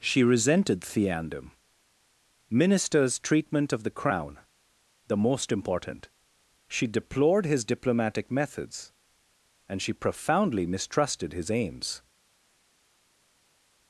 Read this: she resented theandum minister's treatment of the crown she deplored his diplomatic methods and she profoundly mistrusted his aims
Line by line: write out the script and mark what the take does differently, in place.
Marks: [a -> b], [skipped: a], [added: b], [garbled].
she resented theandum minister's treatment of the crown [added: the most important] she deplored his diplomatic methods and she profoundly mistrusted his aims